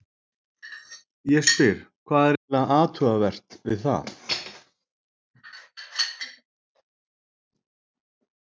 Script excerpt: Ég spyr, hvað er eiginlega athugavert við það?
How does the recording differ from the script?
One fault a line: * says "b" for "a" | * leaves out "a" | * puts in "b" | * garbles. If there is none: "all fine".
all fine